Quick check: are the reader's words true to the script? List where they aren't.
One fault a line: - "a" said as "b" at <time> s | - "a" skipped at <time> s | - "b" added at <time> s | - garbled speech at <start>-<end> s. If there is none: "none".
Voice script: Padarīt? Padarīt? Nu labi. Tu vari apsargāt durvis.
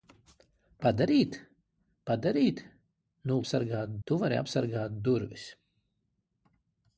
- "labi" said as "apsargāt" at 3.4 s